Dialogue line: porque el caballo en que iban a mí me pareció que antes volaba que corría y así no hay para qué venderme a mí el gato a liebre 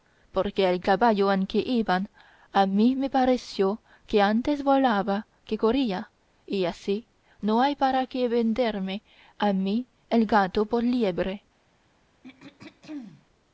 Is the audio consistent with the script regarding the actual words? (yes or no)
no